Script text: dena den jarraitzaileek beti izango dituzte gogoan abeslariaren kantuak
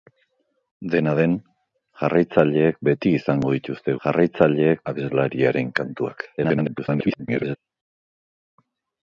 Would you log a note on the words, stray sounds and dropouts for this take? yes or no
yes